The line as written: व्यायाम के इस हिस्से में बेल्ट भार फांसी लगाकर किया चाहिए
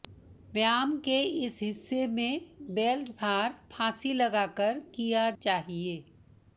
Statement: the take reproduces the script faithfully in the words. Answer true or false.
true